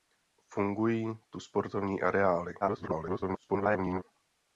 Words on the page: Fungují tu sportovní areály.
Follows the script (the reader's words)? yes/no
no